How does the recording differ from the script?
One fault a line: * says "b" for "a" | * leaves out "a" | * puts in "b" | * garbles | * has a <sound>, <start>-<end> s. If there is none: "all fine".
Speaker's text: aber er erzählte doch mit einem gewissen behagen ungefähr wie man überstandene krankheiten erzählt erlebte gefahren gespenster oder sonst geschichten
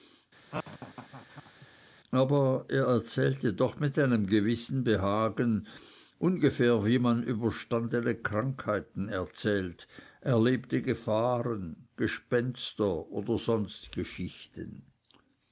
* has a laugh, 0.5-1.7 s